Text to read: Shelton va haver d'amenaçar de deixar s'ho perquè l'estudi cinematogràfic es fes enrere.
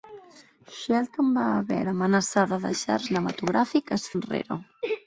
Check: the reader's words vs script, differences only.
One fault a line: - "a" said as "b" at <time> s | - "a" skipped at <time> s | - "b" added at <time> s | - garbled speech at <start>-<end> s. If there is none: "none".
- "s'ho perquè l'estudi" skipped at 3.0 s
- "fes" skipped at 4.1 s